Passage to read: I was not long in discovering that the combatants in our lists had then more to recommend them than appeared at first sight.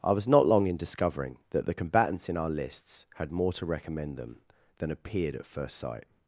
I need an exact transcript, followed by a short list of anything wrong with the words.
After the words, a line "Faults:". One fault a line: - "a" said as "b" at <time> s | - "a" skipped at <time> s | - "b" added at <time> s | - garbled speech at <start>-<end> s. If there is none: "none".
I was not long in discovering that the combatants in our lists had more to recommend them than appeared at first sight.
Faults:
- "then" skipped at 3.3 s